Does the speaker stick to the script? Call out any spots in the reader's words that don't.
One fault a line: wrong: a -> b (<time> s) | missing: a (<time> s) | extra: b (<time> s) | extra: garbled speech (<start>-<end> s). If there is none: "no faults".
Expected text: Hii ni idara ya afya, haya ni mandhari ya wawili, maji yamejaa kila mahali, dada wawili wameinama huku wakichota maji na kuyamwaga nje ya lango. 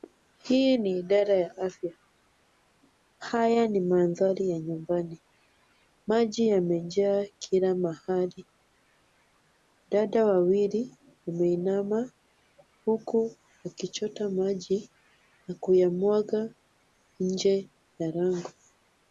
wrong: wawili -> nyumbani (4.6 s)